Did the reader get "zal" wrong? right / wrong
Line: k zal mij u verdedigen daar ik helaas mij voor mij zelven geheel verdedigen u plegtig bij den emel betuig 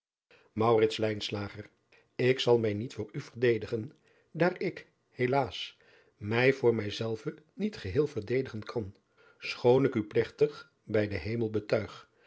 right